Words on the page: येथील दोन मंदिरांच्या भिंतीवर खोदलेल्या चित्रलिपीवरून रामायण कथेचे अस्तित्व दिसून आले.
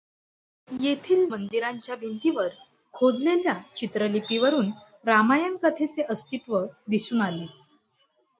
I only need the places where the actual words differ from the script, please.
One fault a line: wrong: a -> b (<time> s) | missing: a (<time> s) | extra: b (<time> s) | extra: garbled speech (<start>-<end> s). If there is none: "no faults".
missing: दोन (1.2 s)